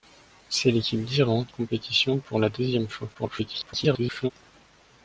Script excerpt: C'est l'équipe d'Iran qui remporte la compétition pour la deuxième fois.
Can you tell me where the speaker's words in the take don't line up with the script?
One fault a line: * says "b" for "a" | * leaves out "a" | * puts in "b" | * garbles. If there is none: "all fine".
* leaves out "qui remporte la"
* garbles